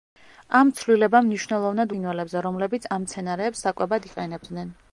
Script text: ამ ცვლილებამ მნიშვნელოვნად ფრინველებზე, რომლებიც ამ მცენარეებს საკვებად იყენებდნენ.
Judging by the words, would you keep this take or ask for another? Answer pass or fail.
pass